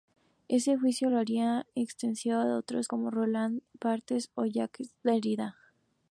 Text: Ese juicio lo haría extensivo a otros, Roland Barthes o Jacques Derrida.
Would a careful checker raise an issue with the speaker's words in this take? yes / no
yes